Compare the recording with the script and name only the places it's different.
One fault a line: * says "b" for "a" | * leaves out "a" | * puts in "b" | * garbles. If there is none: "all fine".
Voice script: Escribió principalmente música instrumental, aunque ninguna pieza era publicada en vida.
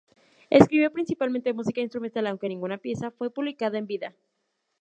* says "fue" for "era"